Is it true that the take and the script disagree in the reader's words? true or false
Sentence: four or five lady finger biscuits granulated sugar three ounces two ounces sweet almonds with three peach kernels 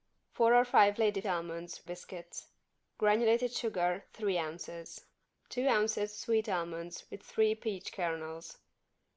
true